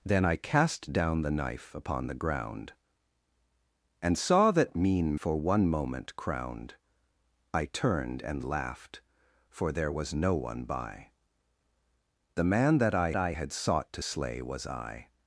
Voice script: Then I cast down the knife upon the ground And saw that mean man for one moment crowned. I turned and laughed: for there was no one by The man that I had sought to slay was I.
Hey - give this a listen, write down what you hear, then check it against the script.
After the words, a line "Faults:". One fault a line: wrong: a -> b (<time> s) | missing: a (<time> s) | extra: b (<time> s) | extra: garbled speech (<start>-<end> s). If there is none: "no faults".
Then I cast down the knife upon the ground And saw that mean for one moment crowned. I turned and laughed: for there was no one by The man that I I had sought to slay was I.
Faults:
missing: man (5.2 s)
extra: I (13.1 s)